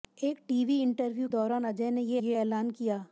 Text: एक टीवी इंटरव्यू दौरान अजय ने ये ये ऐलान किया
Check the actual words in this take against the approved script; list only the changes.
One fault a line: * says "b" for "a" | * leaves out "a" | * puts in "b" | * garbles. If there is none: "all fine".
all fine